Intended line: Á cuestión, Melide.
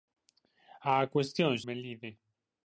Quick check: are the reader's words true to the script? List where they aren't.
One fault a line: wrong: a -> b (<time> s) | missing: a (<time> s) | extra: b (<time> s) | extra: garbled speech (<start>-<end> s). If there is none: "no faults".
no faults